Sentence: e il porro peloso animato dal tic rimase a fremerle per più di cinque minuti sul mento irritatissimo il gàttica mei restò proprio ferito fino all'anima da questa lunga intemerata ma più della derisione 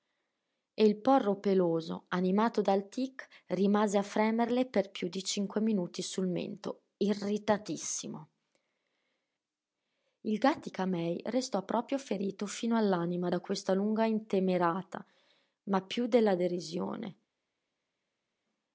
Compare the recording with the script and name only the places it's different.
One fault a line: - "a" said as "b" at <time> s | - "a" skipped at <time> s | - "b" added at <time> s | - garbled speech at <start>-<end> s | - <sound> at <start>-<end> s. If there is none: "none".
none